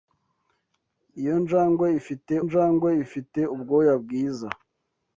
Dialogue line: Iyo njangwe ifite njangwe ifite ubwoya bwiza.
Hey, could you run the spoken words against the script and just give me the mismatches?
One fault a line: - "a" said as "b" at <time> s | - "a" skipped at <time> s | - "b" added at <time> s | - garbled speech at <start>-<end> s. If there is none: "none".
none